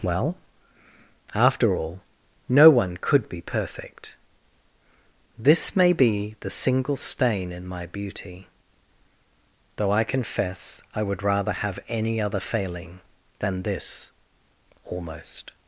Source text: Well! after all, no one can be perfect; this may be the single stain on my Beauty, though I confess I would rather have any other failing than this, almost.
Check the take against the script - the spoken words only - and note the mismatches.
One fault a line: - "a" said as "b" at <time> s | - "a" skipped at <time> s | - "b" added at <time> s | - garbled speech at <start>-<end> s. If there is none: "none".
- "can" said as "could" at 3.0 s
- "on" said as "in" at 7.5 s